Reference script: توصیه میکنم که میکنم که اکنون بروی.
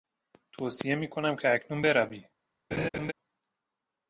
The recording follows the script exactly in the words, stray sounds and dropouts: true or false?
false